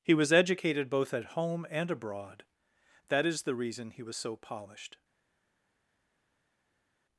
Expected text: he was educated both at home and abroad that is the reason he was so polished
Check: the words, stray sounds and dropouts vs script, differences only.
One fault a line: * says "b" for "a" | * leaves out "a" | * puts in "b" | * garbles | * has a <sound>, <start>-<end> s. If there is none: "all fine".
all fine